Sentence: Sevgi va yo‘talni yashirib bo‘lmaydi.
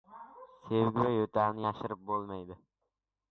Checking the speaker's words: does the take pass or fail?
pass